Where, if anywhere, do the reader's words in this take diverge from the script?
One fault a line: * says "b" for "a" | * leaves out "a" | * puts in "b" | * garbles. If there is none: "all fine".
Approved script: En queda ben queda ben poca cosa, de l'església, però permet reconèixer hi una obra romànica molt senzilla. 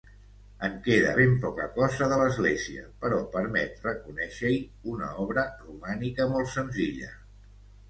* leaves out "queda ben"